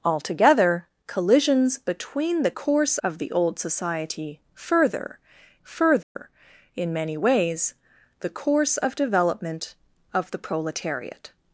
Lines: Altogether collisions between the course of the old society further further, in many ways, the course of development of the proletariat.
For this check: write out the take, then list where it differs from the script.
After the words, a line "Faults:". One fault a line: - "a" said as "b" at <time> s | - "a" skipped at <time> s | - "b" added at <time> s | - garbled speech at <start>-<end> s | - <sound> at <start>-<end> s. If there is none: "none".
Altogether collisions between the course of the old society further further, in many ways, the course of development of the proletariat.
Faults:
- dropout at 6.0-6.2 s